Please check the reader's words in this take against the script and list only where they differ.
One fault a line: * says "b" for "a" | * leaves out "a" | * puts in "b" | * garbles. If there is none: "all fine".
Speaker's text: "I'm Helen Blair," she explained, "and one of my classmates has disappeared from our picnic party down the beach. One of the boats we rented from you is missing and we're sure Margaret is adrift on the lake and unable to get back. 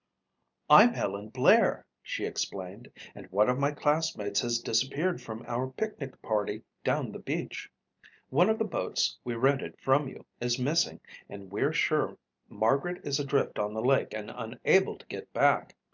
all fine